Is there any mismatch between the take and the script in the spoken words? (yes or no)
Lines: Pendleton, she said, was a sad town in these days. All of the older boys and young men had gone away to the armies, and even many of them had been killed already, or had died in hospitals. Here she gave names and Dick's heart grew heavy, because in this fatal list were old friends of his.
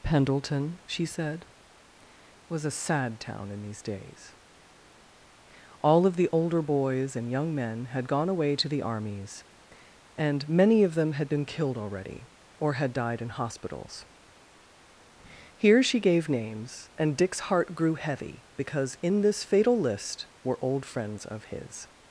yes